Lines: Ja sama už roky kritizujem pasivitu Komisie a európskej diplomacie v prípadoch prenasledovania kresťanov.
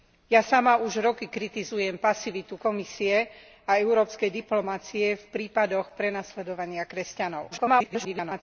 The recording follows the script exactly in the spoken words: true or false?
false